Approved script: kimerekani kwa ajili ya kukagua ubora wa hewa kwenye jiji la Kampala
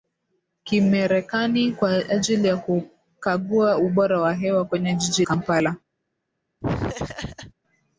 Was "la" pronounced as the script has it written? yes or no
no